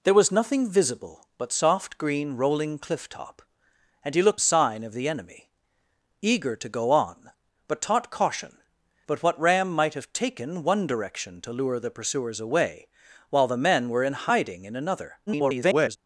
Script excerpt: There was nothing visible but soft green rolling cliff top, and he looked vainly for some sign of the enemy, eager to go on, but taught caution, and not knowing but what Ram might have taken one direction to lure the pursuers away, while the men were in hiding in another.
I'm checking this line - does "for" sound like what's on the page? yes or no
no